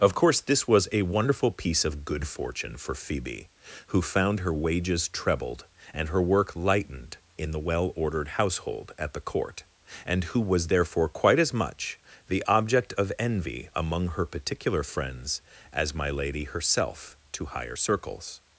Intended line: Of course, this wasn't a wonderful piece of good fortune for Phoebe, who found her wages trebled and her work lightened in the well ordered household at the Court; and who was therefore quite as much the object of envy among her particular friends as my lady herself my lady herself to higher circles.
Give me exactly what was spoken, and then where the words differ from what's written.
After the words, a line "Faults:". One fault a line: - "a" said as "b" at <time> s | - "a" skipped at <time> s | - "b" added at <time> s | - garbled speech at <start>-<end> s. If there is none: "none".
Of course, this was a wonderful piece of good fortune for Phoebe, who found her wages trebled and her work lightened in the well ordered household at the Court; and who was therefore quite as much the object of envy among her particular friends as my lady herself to higher circles.
Faults:
- "wasn't" said as "was" at 0.7 s
- "my lady herself" skipped at 17.1 s